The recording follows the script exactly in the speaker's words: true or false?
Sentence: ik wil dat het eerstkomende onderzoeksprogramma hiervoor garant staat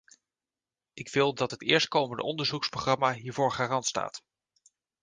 true